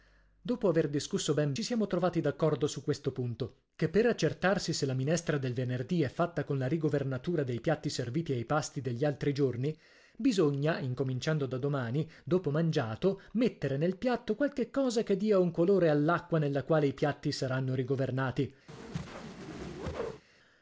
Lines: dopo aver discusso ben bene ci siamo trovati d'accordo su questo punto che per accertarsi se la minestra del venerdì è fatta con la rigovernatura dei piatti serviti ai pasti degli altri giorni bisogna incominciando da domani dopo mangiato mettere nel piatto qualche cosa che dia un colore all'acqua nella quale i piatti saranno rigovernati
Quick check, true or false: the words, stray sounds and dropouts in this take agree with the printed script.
false